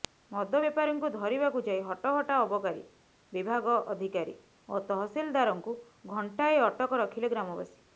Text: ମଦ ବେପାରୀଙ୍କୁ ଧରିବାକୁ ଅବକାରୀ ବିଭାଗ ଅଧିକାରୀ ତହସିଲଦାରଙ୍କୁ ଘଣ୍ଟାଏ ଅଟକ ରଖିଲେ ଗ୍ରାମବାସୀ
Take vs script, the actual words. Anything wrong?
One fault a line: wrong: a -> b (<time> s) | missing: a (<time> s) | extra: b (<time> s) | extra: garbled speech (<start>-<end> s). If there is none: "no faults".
extra: ଯାଇ ହଟହଟା (1.7 s)
extra: ଓ (4.7 s)